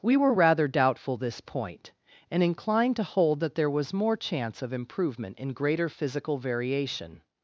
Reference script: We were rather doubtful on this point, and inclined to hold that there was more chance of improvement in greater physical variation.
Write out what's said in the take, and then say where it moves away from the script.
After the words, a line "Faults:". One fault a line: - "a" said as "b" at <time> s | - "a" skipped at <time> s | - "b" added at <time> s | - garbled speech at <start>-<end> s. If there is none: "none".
We were rather doubtful this point, and inclined to hold that there was more chance of improvement in greater physical variation.
Faults:
- "on" skipped at 1.2 s